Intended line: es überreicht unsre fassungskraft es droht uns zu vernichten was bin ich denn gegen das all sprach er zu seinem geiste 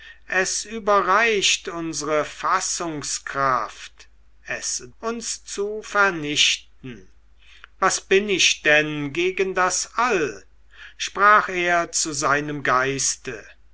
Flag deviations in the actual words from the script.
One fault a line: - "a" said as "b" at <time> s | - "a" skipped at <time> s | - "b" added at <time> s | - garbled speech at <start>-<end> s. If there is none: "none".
- "droht" skipped at 4.8 s